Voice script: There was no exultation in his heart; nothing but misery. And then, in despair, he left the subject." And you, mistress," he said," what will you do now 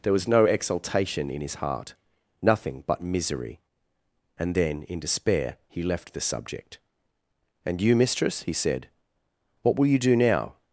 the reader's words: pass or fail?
pass